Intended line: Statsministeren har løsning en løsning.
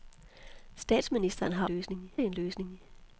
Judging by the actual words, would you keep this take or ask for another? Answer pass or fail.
pass